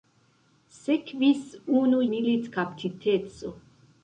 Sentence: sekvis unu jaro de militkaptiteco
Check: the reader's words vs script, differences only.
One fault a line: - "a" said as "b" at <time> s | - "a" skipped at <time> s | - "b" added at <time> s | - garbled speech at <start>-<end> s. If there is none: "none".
- "jaro de" skipped at 2.0 s